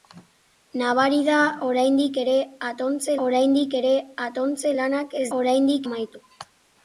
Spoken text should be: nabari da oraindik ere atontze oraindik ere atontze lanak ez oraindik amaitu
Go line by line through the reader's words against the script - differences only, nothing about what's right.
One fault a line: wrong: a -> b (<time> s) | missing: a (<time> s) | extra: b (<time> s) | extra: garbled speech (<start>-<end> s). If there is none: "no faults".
no faults